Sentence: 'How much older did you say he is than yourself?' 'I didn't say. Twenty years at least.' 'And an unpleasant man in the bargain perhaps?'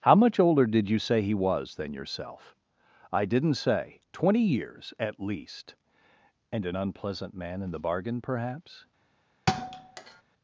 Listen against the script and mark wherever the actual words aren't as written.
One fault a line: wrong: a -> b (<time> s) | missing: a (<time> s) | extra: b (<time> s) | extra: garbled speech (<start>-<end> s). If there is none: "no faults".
wrong: is -> was (1.3 s)